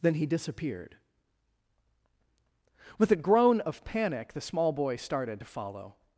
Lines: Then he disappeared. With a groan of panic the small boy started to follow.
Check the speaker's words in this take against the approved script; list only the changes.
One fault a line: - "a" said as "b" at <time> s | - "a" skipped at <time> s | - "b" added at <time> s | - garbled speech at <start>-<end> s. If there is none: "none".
none